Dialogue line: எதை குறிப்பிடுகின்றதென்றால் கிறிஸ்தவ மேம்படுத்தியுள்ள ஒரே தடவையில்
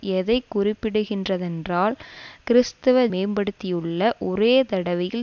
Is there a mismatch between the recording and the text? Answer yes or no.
no